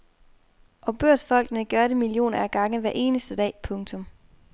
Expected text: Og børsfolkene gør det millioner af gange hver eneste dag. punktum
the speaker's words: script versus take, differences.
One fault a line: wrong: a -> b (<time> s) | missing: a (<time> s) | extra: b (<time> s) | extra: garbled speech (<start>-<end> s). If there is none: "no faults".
no faults